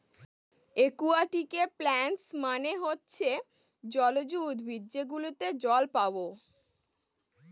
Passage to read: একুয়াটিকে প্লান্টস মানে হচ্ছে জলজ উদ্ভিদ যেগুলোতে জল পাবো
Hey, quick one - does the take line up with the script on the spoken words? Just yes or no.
yes